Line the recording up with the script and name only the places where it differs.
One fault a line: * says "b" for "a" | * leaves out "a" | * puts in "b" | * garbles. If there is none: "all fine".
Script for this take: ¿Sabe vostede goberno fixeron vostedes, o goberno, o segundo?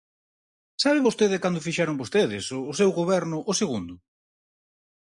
* says "cando" for "goberno"
* puts in "seu"